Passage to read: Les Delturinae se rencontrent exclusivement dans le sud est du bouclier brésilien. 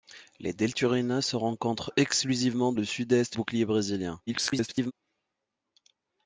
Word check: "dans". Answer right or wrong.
wrong